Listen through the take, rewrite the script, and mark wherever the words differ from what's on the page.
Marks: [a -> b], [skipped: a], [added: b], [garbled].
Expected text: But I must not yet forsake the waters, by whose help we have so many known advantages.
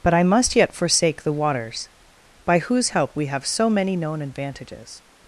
But I must [skipped: not] yet forsake the waters, by whose help we have so many known advantages.